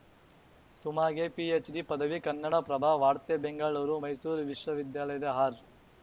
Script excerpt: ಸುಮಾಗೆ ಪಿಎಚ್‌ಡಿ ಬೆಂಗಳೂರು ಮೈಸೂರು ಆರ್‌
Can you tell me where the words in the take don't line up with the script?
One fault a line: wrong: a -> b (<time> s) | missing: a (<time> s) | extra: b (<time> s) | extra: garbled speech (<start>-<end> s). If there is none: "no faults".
extra: ಪದವಿ ಕನ್ನಡಪ್ರಭ ವಾರ್ತೆ (1.8 s)
extra: ವಿಶ್ವವಿದ್ಯಾಲಯದ (4.4 s)